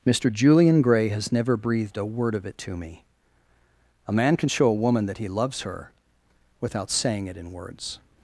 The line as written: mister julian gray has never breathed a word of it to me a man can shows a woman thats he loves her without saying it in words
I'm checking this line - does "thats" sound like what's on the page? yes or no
no